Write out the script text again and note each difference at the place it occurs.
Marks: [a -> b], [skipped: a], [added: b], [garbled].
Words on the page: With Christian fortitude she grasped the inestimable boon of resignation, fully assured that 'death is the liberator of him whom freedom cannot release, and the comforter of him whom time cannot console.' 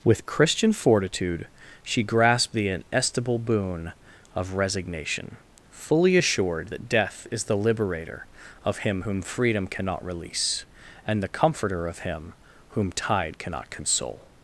With Christian fortitude she grasped the inestimable boon of resignation, fully assured that 'death is the liberator of him whom freedom cannot release, and the comforter of him whom [time -> tide] cannot console.'